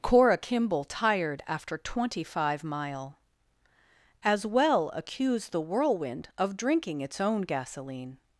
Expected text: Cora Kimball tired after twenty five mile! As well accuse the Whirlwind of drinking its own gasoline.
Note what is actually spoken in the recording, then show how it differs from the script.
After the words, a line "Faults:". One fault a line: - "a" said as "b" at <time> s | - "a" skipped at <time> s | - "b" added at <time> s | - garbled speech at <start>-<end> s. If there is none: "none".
Cora Kimball tired after twenty five mile! As well accuse the Whirlwind of drinking its own gasoline.
Faults:
none